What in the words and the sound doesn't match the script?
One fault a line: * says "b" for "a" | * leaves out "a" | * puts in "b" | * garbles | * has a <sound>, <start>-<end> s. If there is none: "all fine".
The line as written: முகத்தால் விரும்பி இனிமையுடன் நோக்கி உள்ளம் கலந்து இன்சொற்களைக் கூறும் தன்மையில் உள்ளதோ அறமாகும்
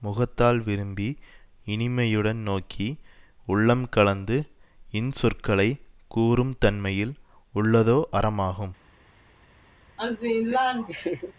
* has a laugh, 10.0-11.3 s